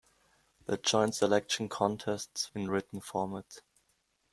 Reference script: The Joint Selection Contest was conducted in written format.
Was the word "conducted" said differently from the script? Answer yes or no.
yes